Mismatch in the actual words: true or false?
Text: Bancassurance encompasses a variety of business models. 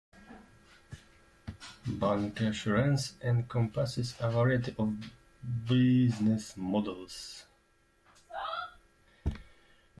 false